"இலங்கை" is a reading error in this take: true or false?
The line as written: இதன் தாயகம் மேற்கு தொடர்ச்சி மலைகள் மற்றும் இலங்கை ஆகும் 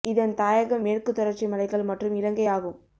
false